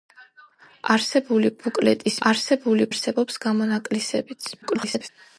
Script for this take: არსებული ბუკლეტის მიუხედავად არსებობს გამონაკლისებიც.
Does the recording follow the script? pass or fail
fail